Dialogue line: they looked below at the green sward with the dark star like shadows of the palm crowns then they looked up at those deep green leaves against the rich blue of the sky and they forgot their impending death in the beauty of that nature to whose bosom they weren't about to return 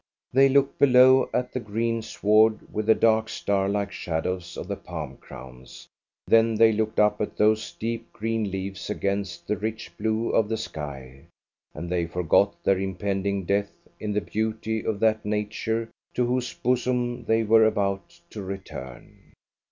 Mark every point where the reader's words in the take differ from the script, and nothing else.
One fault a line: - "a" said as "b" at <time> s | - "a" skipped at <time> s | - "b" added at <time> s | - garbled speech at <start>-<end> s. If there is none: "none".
- "weren't" said as "were" at 17.4 s